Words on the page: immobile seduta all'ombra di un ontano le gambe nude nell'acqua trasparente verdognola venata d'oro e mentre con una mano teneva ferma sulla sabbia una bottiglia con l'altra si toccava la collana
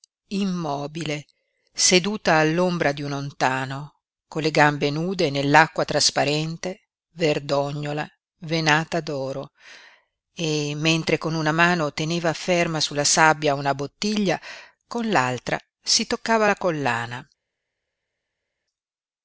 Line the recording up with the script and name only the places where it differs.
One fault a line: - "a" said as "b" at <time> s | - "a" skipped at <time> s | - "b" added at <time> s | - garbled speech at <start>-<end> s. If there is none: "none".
- "con" added at 4.3 s